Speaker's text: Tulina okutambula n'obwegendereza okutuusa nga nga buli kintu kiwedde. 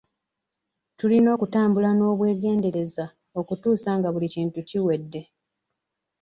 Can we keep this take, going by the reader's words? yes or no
no